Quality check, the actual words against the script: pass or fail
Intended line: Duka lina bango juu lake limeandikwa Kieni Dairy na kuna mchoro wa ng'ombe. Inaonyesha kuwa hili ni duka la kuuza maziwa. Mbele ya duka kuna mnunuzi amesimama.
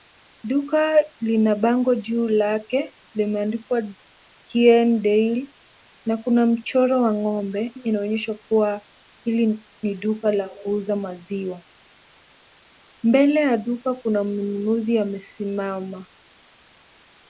pass